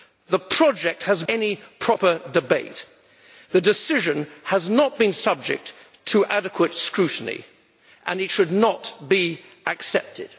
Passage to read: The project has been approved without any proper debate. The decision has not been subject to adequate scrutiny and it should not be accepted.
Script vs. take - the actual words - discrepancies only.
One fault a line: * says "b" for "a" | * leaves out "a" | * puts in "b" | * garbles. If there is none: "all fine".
* leaves out "been approved without"